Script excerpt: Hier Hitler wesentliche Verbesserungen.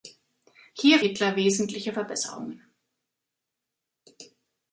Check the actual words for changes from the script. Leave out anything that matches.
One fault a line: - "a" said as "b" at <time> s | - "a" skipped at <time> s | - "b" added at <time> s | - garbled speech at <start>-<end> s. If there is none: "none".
none